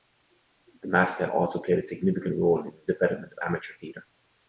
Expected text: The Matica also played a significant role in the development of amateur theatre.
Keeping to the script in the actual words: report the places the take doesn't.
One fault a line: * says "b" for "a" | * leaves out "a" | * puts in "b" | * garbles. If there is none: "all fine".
all fine